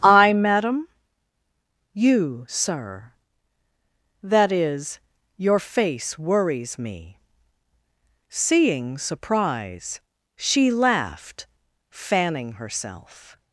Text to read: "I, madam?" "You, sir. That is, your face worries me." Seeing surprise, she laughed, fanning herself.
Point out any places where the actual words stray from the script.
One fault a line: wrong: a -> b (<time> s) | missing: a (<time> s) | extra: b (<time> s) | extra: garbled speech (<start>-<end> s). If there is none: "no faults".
no faults